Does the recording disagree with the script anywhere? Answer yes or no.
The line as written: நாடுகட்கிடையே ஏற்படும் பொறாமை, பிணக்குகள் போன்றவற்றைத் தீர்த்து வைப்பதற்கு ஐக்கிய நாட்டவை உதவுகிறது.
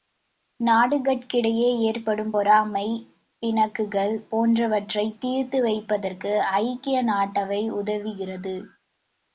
no